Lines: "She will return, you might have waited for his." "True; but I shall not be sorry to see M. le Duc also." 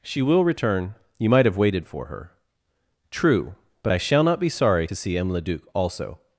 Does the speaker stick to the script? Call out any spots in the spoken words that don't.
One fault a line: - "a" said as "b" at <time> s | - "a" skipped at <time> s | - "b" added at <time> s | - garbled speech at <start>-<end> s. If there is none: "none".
- "his" said as "her" at 2.0 s